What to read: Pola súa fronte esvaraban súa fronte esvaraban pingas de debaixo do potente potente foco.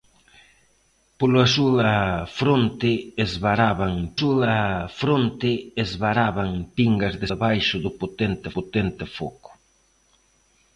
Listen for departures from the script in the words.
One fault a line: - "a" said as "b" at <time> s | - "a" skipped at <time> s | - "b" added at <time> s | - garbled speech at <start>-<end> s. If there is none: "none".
none